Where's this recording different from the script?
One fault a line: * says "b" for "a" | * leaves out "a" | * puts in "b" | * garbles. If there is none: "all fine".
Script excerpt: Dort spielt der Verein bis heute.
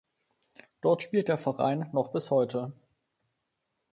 * puts in "noch"